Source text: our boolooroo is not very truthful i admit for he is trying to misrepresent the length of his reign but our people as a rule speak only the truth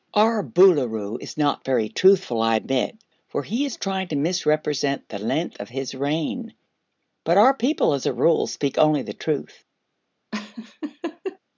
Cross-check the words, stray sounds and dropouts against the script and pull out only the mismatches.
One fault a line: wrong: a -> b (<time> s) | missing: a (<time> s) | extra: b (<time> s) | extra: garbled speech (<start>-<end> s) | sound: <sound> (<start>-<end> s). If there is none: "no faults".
sound: laugh (10.3-11.4 s)